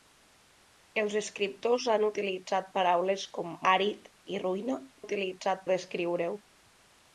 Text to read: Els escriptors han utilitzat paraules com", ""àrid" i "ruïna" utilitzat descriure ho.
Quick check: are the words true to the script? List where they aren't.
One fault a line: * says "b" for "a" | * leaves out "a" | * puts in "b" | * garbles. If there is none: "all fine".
all fine